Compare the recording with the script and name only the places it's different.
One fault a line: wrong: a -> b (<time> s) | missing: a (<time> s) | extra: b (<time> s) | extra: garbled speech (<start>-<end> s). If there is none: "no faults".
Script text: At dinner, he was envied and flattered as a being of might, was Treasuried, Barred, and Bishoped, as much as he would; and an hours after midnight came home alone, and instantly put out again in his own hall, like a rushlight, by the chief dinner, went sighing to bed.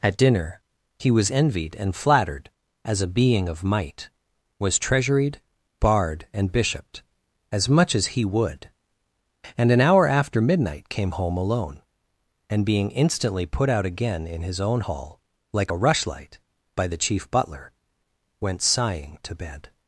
wrong: hours -> hour (9.8 s)
extra: being (12.6 s)
wrong: dinner -> butler (17.3 s)